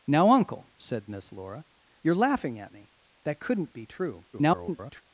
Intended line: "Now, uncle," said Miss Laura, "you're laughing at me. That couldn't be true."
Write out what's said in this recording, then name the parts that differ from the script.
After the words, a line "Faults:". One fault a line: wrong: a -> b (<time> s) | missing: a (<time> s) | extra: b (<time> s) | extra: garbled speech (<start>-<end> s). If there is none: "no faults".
"Now, uncle," said Miss Laura, "you're laughing at me. That couldn't be true." [garbled]
Faults:
extra: garbled speech (4.3-5.0 s)